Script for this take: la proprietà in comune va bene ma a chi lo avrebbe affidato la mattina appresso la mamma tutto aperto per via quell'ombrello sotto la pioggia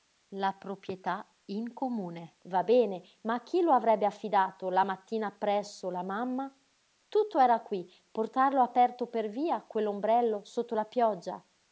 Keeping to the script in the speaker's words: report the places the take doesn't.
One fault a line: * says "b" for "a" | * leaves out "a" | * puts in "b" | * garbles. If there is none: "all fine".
* puts in "era qui portarlo"